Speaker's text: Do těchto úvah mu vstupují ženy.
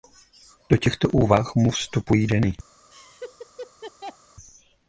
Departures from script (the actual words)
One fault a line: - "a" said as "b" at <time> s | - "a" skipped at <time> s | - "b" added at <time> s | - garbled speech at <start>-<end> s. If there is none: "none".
none